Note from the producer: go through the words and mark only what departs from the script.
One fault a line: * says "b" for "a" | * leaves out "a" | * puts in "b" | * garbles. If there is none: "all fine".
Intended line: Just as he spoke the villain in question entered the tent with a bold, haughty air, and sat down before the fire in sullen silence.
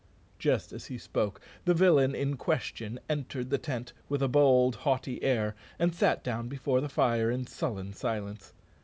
all fine